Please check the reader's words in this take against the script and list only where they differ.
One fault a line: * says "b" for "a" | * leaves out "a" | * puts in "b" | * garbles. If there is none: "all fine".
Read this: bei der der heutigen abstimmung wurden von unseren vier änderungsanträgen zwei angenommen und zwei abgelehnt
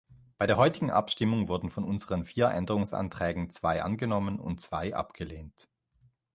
* leaves out "der"